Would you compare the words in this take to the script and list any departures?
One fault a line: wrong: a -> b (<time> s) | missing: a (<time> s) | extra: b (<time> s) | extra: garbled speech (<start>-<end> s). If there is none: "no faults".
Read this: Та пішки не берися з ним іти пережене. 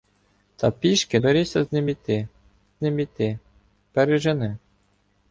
missing: не (1.2 s)
extra: ним іти (2.8 s)